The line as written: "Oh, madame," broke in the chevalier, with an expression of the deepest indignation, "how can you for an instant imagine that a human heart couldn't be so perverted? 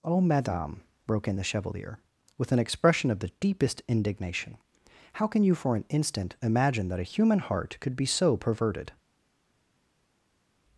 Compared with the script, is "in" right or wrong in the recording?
right